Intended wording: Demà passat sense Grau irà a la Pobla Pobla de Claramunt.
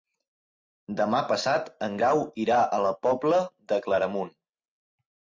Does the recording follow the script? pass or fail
fail